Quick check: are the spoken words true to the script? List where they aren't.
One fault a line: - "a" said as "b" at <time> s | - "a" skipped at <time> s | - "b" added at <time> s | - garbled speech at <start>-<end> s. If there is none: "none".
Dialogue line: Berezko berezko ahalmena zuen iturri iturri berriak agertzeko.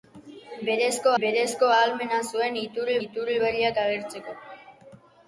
none